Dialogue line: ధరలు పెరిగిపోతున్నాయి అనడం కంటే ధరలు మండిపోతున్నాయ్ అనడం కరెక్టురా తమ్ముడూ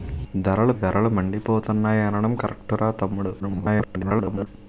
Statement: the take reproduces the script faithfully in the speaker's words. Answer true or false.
false